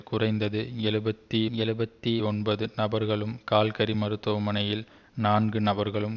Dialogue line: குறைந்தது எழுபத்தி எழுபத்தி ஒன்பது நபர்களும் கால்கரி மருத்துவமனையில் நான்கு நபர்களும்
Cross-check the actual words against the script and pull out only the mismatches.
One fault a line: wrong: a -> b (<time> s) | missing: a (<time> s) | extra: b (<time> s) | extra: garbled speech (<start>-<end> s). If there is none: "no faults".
no faults